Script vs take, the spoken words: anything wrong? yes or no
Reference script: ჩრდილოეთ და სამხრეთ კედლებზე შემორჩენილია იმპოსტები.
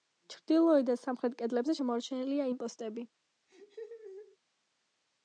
no